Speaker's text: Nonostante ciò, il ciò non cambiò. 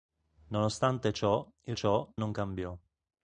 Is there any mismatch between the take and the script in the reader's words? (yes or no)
no